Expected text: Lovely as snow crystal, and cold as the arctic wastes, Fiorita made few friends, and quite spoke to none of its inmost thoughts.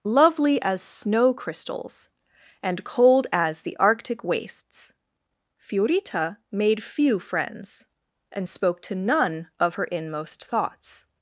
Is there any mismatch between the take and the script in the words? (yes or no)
yes